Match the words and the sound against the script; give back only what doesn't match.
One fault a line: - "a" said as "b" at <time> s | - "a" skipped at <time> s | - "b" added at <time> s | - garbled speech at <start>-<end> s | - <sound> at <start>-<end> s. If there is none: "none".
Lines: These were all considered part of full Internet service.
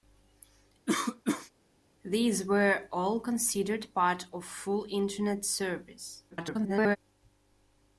- cough at 0.9-1.5 s
- garbled speech at 6.3-7.0 s